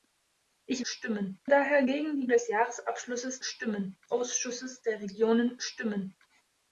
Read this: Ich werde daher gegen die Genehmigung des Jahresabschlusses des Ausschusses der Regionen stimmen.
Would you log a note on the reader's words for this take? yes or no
yes